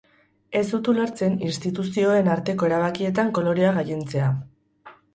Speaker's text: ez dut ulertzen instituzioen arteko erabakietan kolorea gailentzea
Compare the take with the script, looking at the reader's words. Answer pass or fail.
pass